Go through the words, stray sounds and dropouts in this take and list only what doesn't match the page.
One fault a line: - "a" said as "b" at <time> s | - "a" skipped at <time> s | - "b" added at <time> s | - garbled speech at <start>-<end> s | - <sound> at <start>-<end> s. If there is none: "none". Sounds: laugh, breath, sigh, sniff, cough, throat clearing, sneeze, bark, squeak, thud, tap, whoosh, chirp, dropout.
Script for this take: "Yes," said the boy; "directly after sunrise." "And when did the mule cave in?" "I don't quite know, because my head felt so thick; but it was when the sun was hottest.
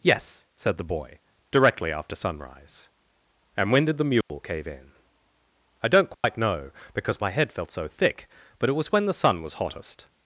- dropout at 4.2-4.3 s
- dropout at 6.1-6.2 s